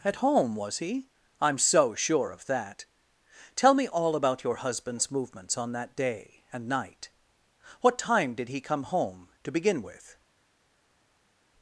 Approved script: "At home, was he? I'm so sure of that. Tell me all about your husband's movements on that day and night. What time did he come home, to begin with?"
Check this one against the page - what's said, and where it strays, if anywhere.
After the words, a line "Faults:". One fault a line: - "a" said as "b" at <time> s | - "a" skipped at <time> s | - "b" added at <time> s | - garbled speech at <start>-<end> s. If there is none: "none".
"At home, was he? I'm so sure of that. Tell me all about your husband's movements on that day and night. What time did he come home, to begin with?"
Faults:
none